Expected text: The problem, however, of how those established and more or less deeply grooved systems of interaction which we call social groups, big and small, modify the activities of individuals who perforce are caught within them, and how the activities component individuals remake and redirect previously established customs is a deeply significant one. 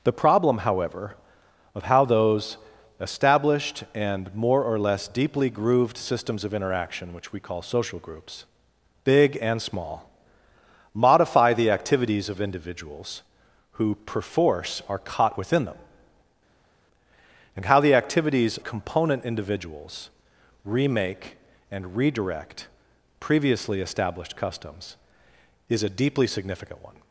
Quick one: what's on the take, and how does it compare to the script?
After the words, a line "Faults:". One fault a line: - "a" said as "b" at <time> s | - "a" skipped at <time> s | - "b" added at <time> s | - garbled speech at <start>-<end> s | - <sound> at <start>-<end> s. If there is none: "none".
The problem, however, of how those established and more or less deeply grooved systems of interaction which we call social groups, big and small, modify the activities of individuals who perforce are caught within them, and how the activities component individuals remake and redirect previously established customs is a deeply significant one.
Faults:
none